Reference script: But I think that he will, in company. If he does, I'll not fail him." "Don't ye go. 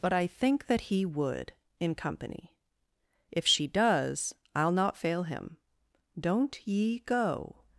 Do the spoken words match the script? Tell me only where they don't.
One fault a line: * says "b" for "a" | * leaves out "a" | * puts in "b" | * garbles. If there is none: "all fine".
* says "would" for "will"
* says "she" for "he"